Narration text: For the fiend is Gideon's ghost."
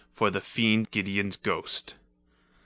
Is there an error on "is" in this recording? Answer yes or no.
yes